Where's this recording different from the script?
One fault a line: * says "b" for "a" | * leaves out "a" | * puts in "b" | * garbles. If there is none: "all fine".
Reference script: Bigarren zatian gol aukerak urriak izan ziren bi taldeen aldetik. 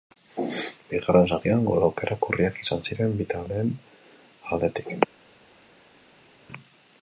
all fine